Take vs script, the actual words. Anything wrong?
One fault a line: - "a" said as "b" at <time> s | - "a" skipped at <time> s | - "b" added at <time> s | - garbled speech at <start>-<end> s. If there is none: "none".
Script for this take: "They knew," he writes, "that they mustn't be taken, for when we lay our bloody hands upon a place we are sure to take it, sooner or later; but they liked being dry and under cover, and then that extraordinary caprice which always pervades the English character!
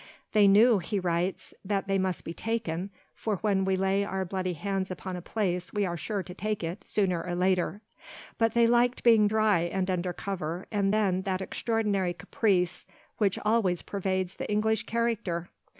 - "mustn't" said as "must" at 2.0 s